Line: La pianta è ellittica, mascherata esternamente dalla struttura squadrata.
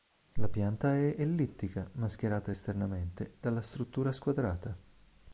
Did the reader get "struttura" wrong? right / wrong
right